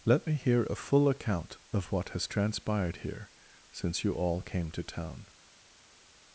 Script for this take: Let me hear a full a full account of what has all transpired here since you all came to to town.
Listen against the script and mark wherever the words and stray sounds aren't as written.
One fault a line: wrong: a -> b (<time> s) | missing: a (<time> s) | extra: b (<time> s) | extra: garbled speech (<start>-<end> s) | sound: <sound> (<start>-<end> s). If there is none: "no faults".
missing: a full (1.1 s)
missing: all (2.2 s)
missing: to (4.8 s)